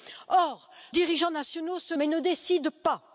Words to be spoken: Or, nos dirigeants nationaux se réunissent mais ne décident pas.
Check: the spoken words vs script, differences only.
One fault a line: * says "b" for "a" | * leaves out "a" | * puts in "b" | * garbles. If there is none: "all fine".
* leaves out "nos"
* leaves out "réunissent"